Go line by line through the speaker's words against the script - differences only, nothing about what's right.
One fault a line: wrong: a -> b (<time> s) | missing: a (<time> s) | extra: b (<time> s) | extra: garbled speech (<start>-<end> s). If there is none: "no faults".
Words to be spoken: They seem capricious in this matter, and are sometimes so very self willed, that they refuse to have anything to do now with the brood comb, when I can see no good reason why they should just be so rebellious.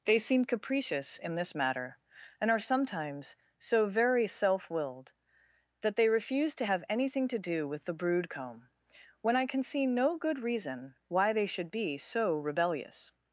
missing: now (7.7 s)
missing: just (11.7 s)